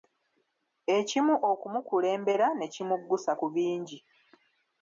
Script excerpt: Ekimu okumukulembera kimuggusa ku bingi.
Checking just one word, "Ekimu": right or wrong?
right